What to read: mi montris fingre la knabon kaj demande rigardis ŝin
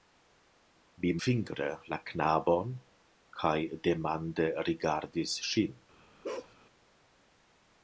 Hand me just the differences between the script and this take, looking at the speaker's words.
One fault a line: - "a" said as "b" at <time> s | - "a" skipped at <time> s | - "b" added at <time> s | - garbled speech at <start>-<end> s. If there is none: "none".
- "montris" skipped at 1.1 s